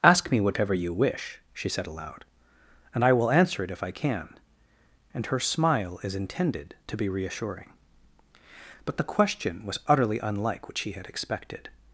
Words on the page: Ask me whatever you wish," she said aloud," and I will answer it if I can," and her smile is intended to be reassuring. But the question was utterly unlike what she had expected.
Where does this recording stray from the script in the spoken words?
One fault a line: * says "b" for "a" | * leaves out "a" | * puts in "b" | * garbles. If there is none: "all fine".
all fine